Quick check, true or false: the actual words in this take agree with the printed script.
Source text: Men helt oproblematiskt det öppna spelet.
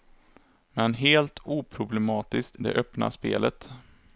true